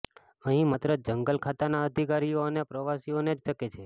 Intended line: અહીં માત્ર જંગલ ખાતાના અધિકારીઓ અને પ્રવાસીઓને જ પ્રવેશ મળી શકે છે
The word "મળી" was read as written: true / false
false